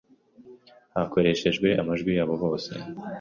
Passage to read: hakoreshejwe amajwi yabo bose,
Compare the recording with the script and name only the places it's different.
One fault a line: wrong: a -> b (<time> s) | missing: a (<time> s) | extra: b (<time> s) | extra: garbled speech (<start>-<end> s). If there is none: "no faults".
no faults